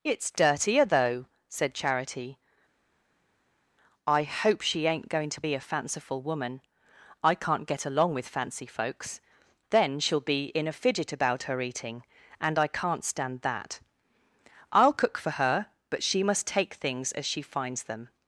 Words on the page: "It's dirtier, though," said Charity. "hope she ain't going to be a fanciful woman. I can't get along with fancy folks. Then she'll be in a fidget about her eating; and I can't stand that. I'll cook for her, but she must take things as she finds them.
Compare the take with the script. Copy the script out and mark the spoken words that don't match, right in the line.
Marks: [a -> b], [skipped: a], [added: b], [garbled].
"It's dirtier, though," said Charity. [added: I] "hope she ain't going to be a fanciful woman. I can't get along with fancy folks. Then she'll be in a fidget about her eating; and I can't stand that. I'll cook for her, but she must take things as she finds them.